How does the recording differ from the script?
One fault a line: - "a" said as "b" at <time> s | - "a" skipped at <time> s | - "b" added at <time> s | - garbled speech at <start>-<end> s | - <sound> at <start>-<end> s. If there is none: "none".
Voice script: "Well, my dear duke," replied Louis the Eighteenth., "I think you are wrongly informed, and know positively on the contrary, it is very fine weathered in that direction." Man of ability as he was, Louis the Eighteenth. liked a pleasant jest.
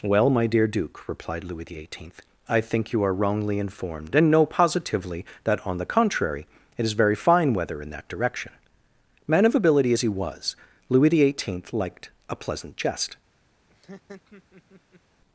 - "that" added at 5.4 s
- "weathered" said as "weather" at 7.5 s
- laugh at 13.7-15.0 s